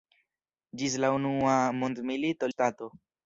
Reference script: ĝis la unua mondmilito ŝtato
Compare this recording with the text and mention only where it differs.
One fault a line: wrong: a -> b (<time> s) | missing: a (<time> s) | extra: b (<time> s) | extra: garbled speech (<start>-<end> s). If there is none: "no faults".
no faults